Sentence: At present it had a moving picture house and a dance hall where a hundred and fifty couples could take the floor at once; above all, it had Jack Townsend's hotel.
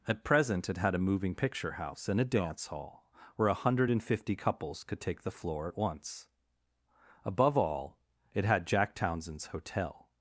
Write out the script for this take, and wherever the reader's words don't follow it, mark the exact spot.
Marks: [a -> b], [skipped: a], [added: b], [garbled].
At present it had a moving picture house and a dance hall where a hundred and fifty couples could take the floor at once; above all, it had Jack Townsend's hotel.